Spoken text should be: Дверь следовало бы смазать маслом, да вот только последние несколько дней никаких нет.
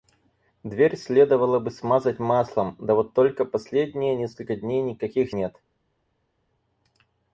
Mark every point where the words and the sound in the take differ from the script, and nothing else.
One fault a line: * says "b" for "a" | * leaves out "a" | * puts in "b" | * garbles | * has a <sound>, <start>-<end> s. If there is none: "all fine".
all fine